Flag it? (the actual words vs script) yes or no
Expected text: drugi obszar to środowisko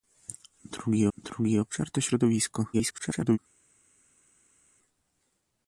yes